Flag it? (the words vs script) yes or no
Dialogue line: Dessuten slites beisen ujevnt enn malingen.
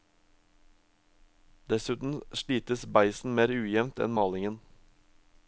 yes